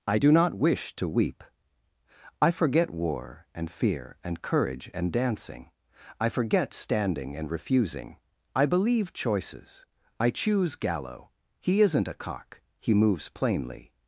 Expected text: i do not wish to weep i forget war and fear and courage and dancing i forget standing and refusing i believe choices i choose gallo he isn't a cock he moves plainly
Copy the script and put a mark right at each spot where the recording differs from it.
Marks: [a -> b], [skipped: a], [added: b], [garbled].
i do not wish to weep i forget war and fear and courage and dancing i forget standing and refusing i believe choices i choose gallo he isn't a cock he moves plainly